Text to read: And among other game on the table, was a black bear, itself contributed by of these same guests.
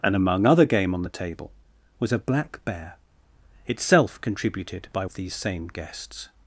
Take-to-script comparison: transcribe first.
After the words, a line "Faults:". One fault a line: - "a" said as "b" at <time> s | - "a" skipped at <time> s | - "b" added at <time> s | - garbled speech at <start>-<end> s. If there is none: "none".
And among other game on the table, was a black bear, itself contributed by of these same guests.
Faults:
none